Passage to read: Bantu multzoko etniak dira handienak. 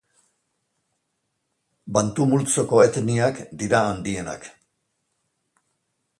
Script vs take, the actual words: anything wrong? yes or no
no